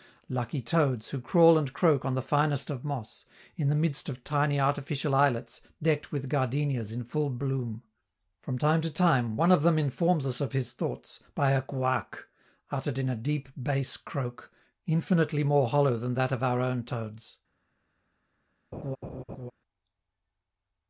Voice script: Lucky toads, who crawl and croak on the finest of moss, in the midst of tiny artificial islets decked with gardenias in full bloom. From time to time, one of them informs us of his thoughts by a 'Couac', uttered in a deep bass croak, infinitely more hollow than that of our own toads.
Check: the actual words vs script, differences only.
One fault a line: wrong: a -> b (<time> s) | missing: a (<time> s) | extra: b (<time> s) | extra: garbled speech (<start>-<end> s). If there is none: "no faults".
no faults